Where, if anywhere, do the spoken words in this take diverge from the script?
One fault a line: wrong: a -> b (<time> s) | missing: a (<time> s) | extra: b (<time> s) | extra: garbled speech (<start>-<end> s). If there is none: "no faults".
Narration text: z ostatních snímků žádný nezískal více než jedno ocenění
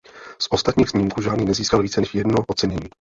no faults